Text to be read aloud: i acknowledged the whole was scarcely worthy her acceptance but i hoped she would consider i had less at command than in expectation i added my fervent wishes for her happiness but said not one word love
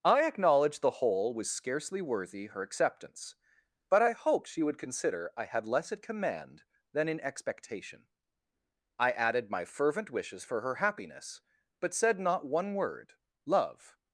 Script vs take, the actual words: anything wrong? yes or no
no